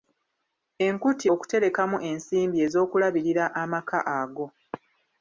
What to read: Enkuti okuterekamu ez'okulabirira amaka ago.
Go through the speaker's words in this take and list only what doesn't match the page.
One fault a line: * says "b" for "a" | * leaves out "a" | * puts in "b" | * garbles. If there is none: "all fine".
* puts in "ensimbi"